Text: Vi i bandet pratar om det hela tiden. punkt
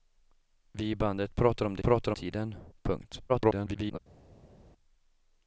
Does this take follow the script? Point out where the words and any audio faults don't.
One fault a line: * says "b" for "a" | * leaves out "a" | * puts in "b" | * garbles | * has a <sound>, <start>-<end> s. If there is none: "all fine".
* says "pratar" for "hela"
* garbles